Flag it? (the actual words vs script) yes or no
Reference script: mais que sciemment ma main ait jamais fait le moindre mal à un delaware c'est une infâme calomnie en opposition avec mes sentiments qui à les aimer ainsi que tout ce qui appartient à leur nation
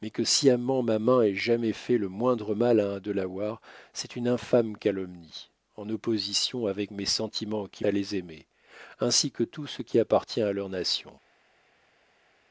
no